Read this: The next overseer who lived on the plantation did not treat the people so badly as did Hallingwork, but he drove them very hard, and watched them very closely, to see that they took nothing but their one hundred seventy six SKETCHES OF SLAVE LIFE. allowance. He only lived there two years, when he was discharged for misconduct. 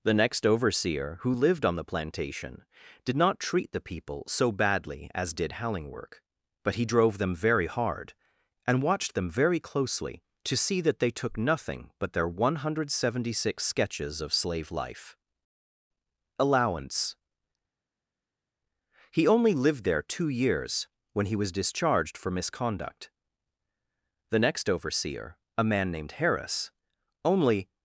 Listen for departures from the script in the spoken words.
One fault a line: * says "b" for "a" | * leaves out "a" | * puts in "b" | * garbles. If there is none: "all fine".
* puts in "The next overseer a man named Harris only"